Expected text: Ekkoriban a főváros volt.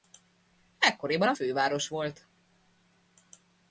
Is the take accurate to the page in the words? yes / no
yes